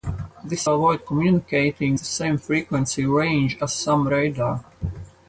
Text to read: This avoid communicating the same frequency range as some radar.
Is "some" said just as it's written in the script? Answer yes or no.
yes